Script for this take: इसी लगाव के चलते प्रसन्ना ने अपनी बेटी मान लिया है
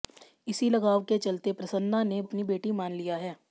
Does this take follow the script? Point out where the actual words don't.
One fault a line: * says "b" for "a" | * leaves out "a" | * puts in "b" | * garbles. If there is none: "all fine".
all fine